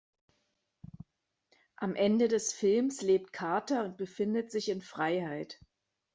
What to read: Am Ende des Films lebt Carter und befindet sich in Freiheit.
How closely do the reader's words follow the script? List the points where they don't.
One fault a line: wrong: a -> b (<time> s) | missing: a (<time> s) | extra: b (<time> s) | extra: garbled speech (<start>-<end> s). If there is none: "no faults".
no faults